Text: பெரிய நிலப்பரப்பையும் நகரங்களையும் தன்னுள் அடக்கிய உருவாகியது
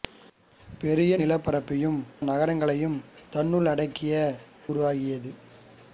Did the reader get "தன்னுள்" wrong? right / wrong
right